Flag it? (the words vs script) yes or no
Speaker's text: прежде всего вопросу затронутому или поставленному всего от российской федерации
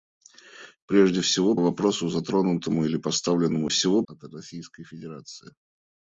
no